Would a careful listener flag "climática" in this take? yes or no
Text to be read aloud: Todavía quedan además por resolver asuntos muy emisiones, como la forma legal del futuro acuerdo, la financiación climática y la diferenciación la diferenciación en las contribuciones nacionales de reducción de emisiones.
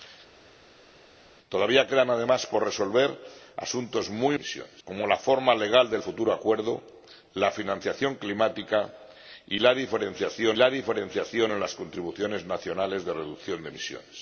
no